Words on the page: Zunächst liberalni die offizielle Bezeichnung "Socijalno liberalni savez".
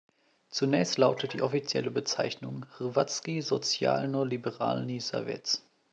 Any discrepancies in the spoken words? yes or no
yes